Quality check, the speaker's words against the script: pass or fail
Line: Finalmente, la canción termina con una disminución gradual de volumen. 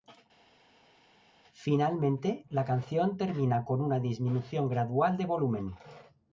pass